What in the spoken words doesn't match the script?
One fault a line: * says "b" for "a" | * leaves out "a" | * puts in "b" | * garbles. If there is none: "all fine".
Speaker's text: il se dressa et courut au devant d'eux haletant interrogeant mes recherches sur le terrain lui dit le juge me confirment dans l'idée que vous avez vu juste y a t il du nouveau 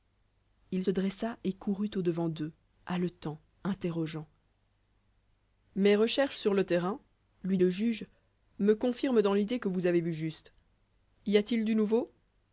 * leaves out "se"
* leaves out "dit"